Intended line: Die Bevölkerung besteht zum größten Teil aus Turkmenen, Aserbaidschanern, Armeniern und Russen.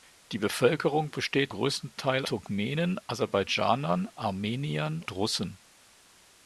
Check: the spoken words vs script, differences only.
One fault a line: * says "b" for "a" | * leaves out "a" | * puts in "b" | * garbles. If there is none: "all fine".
* leaves out "zum"
* leaves out "aus"
* leaves out "und"